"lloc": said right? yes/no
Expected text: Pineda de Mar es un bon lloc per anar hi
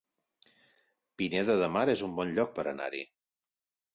yes